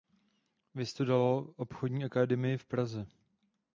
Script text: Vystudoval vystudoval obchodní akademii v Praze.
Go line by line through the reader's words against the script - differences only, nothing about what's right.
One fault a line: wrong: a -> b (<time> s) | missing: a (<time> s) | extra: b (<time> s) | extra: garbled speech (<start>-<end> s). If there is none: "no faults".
missing: vystudoval (1.5 s)